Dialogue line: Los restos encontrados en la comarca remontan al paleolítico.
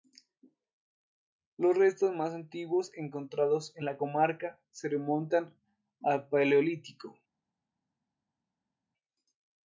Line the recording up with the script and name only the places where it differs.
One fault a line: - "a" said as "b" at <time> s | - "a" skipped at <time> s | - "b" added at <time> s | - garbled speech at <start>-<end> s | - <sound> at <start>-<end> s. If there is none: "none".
- "más antiguos" added at 2.1 s
- "se" added at 4.7 s